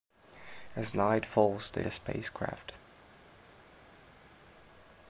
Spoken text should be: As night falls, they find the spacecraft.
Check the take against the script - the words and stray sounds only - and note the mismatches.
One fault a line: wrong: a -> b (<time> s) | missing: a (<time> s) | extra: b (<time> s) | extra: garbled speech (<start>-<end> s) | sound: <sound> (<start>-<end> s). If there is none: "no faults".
missing: find (1.8 s)